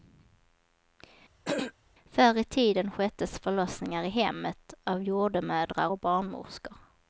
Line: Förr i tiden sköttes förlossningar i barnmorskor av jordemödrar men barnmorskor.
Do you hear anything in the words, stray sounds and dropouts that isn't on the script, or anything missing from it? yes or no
yes